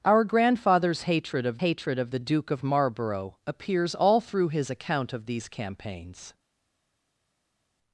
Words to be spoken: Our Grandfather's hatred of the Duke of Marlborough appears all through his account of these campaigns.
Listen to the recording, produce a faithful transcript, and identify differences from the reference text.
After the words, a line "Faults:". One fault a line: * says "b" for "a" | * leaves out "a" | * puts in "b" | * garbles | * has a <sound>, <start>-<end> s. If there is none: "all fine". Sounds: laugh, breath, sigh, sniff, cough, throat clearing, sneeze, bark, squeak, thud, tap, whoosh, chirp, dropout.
Our Grandfather's hatred of hatred of the Duke of Marlborough appears all through his account of these campaigns.
Faults:
* puts in "hatred of"